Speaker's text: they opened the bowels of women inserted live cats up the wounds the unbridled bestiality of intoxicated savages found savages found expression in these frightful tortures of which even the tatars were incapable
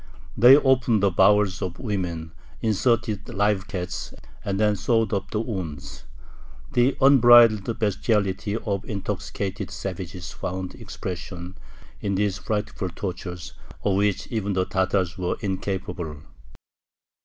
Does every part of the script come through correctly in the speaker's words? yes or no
no